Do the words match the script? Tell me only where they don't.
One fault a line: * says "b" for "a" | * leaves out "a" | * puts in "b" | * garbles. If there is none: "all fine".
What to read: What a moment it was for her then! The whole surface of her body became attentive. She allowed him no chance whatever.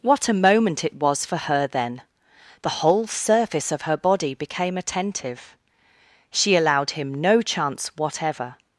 all fine